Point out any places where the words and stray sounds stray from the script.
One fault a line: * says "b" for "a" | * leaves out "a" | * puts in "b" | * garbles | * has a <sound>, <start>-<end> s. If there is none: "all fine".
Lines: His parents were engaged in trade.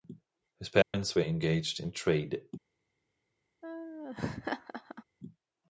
* has a dropout, 0.8-0.9 s
* has a laugh, 3.6-5.0 s